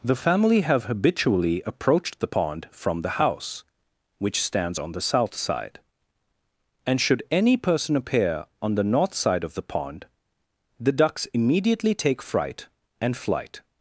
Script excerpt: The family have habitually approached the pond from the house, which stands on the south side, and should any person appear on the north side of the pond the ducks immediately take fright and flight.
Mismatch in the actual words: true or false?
false